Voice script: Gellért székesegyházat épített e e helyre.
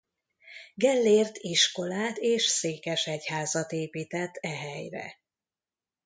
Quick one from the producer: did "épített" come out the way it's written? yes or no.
yes